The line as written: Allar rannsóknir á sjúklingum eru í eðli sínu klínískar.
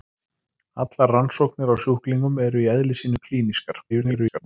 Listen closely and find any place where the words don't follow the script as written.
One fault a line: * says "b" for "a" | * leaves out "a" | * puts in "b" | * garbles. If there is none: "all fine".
* garbles